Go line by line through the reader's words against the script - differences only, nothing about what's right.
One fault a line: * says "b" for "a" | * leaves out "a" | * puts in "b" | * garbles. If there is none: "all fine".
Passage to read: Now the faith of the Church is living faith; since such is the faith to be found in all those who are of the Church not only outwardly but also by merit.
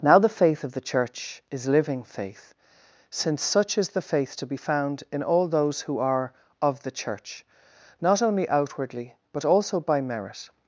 all fine